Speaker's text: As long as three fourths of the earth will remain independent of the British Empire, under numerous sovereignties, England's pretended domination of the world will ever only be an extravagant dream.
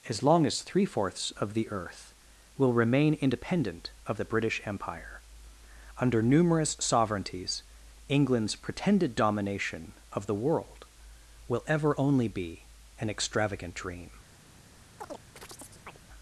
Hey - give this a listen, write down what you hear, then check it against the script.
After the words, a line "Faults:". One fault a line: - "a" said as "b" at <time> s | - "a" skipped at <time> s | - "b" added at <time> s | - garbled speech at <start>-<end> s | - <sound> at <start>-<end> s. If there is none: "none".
As long as three fourths of the earth will remain independent of the British Empire, under numerous sovereignties, England's pretended domination of the world will ever only be an extravagant dream.
Faults:
- chirp at 15.0-16.0 s